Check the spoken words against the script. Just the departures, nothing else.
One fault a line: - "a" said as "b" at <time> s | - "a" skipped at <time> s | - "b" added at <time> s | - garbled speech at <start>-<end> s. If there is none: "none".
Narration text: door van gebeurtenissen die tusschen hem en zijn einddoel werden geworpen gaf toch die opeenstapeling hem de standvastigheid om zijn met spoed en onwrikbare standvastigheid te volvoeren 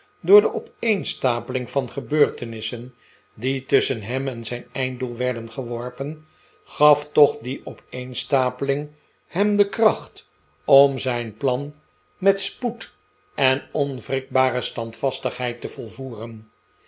- "de opeenstapeling" added at 0.4 s
- "standvastigheid" said as "kracht" at 9.7 s
- "plan" added at 11.4 s